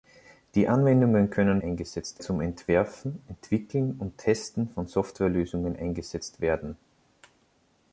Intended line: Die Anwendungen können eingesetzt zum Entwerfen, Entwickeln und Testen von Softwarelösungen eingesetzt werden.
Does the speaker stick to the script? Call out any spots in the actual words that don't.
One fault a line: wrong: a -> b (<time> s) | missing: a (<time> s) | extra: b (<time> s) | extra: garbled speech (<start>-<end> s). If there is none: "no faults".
no faults